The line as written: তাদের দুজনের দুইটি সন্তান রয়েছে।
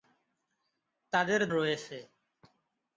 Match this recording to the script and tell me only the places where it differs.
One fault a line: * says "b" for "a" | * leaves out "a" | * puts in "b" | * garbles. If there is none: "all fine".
* leaves out "দুজনের দুইটি সন্তান"